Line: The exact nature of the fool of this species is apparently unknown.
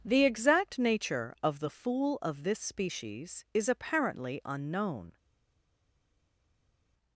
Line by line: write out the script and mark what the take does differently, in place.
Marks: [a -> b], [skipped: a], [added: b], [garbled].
The exact nature of the fool of this species is apparently unknown.